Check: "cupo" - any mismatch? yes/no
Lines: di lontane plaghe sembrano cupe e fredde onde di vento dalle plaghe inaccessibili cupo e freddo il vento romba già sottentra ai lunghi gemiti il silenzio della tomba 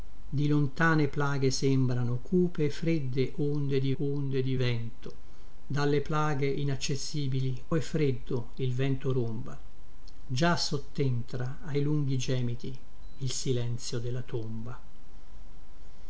yes